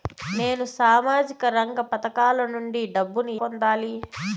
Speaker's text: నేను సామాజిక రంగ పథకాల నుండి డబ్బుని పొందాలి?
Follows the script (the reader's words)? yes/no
yes